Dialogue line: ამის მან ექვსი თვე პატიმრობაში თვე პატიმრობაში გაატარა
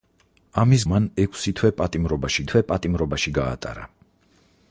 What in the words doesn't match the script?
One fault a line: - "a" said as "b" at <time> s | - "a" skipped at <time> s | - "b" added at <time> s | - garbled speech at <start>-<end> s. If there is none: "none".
none